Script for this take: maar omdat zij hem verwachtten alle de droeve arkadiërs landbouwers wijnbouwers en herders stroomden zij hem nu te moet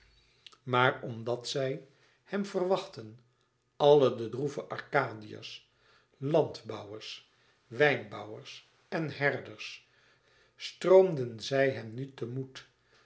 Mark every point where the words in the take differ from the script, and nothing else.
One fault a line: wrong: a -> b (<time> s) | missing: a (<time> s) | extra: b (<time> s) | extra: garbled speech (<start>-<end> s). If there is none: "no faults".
no faults